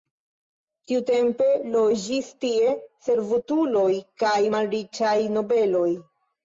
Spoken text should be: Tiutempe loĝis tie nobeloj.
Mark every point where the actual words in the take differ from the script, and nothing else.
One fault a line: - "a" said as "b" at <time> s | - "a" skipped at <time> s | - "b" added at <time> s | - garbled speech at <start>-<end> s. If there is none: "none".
- "servutuloj kaj malriĉaj" added at 3.1 s